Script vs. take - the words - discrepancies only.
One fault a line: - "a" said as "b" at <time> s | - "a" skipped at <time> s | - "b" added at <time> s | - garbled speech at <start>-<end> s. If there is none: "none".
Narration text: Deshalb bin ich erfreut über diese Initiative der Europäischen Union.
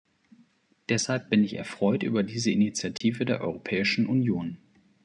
none